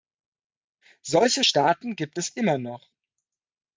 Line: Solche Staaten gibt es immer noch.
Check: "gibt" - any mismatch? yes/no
no